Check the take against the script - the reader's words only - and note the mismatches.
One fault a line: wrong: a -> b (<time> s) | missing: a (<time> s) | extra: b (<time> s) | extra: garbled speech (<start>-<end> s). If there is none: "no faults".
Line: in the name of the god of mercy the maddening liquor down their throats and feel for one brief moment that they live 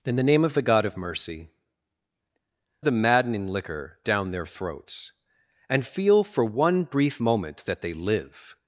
no faults